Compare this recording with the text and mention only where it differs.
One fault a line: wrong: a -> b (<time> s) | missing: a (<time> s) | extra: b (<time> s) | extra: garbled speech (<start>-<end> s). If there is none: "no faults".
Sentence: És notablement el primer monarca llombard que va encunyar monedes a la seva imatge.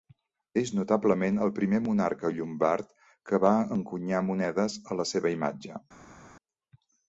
no faults